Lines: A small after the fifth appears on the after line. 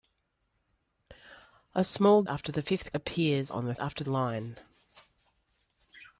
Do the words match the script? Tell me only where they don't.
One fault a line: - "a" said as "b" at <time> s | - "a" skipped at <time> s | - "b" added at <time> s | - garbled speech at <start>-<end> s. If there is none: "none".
none